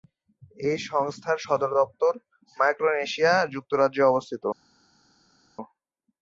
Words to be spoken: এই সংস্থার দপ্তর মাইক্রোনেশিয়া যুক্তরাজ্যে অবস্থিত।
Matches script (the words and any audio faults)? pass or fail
fail